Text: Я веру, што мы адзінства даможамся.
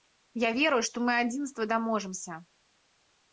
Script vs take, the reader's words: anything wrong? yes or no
no